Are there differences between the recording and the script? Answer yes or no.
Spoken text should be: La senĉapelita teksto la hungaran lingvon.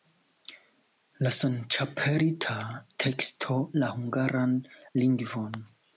no